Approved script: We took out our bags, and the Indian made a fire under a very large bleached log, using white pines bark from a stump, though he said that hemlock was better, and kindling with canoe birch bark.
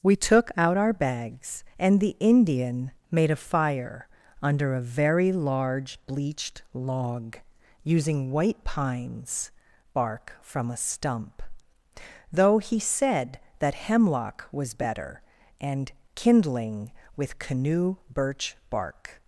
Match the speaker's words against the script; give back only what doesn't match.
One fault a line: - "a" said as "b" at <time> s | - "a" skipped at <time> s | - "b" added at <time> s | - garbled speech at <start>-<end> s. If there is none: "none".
none